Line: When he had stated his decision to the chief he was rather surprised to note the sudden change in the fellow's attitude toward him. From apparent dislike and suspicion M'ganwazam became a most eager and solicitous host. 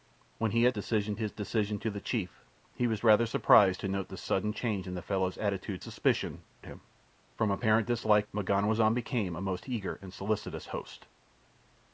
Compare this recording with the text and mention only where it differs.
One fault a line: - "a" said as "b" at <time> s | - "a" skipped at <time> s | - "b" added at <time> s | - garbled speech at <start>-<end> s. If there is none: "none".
- "stated" said as "decision" at 0.7 s
- "toward" said as "suspicion" at 5.8 s
- "and suspicion" skipped at 8.3 s